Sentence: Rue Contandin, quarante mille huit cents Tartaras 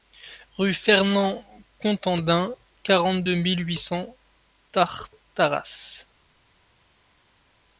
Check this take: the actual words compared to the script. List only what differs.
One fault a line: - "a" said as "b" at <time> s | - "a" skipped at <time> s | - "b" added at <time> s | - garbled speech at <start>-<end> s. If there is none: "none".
- "Fernand" added at 0.7 s
- "deux" added at 3.2 s